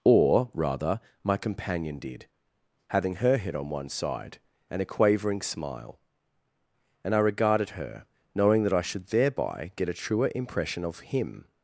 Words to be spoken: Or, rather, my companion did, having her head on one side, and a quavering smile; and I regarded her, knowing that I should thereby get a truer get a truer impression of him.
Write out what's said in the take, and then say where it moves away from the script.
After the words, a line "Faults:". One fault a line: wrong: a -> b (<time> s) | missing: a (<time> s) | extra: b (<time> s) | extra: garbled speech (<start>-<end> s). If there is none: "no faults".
Or, rather, my companion did, having her head on one side, and a quavering smile; and I regarded her, knowing that I should thereby get a truer impression of him.
Faults:
missing: get a truer (10.3 s)